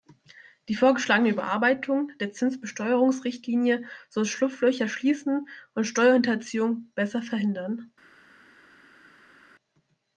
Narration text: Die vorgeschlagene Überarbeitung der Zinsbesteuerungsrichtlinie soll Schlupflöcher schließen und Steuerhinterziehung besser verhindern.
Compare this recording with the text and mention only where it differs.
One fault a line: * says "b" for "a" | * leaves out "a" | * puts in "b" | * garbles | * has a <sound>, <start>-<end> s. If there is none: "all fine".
all fine